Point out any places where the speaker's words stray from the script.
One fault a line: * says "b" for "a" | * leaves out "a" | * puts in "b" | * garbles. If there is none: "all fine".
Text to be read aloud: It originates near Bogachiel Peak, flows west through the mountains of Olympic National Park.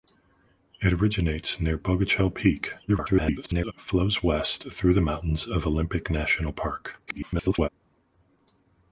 * garbles
* garbles